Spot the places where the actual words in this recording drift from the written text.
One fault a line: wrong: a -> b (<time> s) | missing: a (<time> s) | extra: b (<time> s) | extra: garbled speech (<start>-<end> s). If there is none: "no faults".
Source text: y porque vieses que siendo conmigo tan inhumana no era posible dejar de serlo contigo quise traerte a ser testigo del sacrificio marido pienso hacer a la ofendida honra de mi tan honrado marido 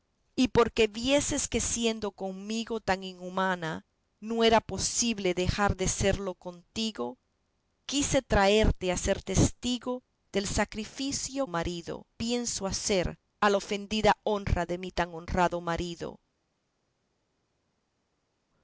no faults